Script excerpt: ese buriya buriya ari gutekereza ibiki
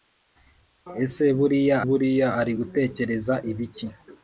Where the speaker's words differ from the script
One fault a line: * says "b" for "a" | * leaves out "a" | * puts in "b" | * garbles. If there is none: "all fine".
all fine